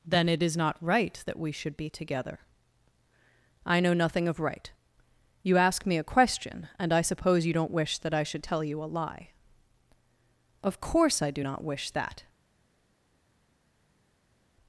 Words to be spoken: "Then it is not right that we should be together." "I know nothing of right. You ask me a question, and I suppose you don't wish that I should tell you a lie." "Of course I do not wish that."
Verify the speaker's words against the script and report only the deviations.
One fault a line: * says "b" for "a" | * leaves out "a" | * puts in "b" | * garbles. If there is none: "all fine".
all fine